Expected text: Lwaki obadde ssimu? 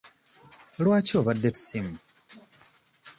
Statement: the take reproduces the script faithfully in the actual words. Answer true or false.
true